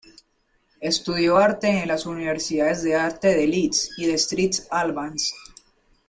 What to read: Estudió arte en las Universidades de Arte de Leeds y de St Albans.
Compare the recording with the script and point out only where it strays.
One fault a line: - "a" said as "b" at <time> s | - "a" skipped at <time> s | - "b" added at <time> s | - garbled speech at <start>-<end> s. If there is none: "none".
none